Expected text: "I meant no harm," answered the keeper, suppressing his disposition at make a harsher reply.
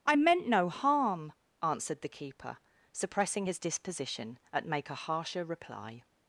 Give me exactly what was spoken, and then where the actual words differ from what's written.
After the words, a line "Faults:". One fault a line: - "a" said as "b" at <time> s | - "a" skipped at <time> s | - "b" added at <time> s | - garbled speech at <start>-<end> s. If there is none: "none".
"I meant no harm," answered the keeper, suppressing his disposition at make a harsher reply.
Faults:
none